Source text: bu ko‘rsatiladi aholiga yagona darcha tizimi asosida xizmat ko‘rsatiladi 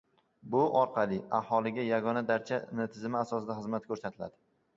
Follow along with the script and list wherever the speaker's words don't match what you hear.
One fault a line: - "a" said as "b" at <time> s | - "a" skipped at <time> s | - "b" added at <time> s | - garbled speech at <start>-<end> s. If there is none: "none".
- "ko‘rsatiladi" said as "orqali" at 0.8 s